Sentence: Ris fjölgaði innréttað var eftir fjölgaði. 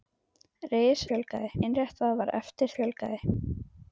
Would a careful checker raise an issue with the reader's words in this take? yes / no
no